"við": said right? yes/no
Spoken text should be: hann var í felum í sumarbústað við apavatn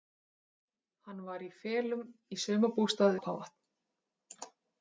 no